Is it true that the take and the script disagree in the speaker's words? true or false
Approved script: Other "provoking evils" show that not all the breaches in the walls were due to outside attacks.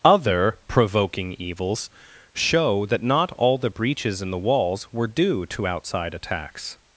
false